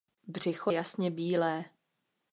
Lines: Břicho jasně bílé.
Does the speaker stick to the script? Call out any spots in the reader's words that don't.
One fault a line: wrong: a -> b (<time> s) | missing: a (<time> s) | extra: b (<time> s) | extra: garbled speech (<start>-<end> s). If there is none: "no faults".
no faults